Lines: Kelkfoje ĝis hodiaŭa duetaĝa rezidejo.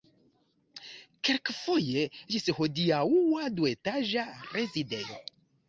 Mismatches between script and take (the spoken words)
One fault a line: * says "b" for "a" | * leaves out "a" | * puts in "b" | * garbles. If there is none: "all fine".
all fine